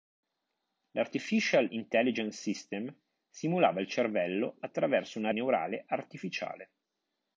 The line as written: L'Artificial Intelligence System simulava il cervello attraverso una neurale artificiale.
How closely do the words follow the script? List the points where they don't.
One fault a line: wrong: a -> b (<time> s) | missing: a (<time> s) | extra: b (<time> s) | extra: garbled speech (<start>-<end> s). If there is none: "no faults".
no faults